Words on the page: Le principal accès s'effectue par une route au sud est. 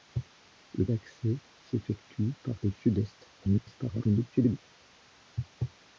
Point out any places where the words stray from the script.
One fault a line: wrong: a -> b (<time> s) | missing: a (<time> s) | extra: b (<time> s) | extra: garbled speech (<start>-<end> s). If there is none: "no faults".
missing: principal (0.9 s)
missing: une route (2.6 s)
extra: garbled speech (3.4-4.6 s)